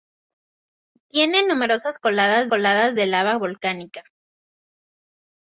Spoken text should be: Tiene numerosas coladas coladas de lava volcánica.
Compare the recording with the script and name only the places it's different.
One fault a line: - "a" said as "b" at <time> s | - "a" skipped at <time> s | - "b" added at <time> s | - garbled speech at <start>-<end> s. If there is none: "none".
none